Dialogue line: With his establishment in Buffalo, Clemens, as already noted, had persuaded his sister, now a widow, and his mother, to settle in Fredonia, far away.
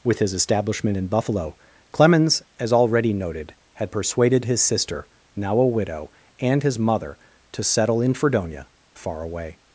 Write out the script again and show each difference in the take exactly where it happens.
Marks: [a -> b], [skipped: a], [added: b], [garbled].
With his establishment in Buffalo, Clemens, as already noted, had persuaded his sister, now a widow, and his mother, to settle in Fredonia, far away.